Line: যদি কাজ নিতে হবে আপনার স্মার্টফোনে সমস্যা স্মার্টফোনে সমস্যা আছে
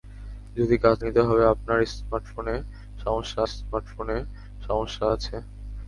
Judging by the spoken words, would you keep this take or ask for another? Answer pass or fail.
pass